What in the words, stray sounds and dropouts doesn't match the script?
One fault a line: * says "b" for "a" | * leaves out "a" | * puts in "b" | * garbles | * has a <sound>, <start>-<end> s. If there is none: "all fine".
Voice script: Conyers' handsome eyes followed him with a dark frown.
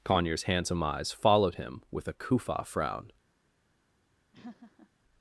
* says "kufa" for "dark"
* has a laugh, 4.3-4.9 s